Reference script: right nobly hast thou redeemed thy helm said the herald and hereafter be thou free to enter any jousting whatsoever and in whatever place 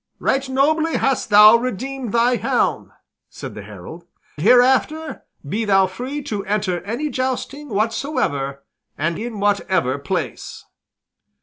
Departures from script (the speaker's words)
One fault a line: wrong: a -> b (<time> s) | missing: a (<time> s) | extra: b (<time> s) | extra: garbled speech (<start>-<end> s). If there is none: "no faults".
missing: and (4.1 s)